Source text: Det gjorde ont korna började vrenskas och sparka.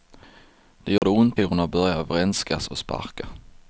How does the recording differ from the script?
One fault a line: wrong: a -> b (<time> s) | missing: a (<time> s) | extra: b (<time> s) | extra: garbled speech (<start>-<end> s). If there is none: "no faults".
no faults